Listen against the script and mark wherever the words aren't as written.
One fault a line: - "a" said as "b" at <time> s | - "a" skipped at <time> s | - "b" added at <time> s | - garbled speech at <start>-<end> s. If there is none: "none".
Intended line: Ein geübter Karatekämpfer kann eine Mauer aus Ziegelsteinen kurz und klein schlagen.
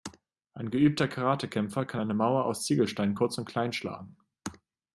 none